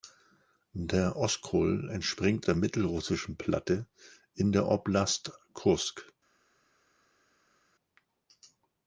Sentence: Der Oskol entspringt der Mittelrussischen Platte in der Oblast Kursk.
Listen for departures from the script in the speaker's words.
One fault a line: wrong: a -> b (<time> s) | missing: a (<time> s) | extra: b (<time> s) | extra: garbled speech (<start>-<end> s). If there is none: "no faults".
no faults